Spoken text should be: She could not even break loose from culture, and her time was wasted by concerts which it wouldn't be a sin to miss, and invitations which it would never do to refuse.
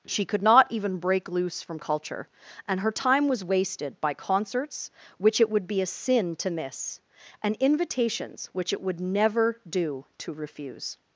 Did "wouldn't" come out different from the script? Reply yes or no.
yes